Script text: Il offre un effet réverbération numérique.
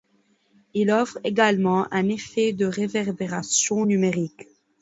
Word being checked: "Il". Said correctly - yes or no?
yes